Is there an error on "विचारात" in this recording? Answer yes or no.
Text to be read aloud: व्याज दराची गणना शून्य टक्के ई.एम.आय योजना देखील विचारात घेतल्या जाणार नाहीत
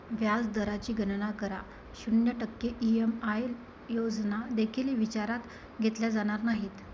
no